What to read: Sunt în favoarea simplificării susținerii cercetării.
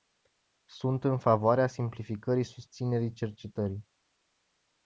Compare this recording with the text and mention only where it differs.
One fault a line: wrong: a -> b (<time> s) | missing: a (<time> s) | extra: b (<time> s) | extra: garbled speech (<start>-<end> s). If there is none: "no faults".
no faults